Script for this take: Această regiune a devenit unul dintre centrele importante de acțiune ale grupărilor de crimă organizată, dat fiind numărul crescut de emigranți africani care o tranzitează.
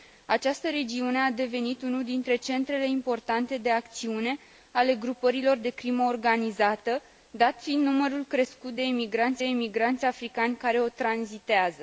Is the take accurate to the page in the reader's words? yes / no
no